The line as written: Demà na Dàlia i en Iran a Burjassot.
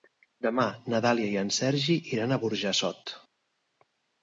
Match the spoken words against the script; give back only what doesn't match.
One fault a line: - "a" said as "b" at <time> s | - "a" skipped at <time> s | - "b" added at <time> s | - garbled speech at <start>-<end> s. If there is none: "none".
- "Sergi" added at 1.6 s